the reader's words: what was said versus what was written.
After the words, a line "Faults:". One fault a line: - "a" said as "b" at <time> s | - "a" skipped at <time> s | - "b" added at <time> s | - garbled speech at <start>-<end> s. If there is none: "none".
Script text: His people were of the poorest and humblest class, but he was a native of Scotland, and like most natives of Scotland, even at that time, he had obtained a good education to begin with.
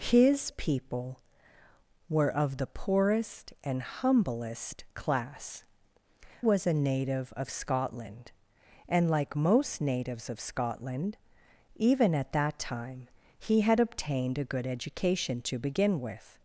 His people were of the poorest and humblest class, was a native of Scotland, and like most natives of Scotland, even at that time, he had obtained a good education to begin with.
Faults:
- "but he" skipped at 5.6 s